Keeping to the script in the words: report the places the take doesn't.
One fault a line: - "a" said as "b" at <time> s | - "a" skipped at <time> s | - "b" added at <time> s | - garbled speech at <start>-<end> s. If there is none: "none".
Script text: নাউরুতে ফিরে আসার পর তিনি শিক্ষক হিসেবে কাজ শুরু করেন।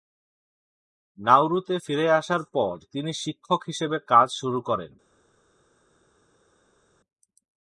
none